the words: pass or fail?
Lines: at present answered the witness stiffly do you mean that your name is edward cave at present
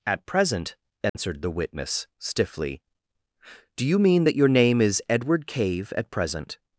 pass